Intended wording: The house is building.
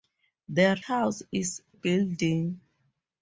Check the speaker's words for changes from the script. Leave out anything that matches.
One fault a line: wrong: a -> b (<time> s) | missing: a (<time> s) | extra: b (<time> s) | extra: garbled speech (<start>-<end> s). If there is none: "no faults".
no faults